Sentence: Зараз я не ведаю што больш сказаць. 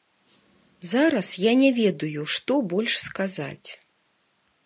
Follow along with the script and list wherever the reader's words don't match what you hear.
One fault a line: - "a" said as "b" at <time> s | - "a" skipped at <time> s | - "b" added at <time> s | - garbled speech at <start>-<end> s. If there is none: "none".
none